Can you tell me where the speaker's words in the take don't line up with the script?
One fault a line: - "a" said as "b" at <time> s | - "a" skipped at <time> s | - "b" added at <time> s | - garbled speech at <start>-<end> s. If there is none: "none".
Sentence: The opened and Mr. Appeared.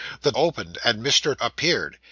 none